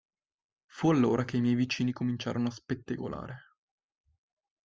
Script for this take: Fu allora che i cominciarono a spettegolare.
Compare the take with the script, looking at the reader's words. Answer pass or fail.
fail